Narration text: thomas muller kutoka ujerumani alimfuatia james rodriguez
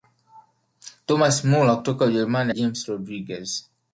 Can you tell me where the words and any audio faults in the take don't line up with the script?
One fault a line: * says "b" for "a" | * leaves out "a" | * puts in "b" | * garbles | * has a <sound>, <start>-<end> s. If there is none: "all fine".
* leaves out "alimfuatia"